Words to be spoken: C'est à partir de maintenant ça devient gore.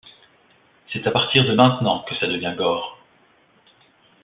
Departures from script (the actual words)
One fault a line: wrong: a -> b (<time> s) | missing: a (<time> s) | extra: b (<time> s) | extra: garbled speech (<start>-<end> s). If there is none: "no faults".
extra: que (2.0 s)